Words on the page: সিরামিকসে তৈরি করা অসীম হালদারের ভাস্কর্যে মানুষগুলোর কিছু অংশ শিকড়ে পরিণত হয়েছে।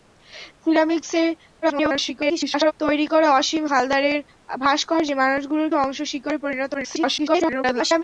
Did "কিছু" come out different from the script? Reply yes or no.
yes